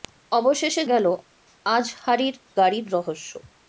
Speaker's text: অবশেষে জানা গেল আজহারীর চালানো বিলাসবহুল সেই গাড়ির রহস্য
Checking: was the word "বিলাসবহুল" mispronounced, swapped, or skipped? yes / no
yes